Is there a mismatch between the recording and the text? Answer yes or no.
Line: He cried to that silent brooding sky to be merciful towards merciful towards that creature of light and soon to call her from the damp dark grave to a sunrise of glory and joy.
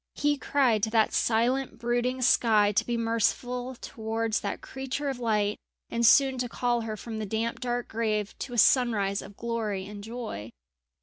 yes